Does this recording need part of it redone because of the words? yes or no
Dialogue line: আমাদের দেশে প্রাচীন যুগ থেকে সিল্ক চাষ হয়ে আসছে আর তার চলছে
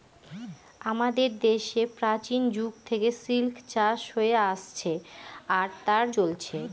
no